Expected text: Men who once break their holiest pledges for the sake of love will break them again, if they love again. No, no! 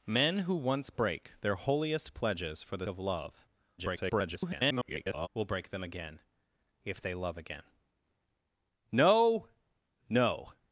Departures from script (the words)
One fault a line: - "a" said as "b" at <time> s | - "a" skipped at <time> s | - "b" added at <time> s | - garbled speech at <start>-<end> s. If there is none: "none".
- "sake" skipped at 2.9 s
- garbled speech at 3.8-5.3 s